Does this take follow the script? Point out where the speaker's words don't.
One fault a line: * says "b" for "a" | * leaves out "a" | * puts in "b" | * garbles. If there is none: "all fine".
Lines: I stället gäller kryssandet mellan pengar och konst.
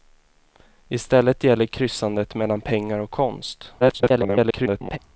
* garbles